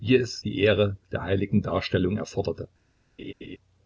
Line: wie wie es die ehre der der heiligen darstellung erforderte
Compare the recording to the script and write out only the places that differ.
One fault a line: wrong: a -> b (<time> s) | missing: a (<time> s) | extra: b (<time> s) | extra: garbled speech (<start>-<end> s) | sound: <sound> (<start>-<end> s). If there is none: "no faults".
missing: wie (0.1 s)
missing: der (1.2 s)
sound: laugh (3.2-3.6 s)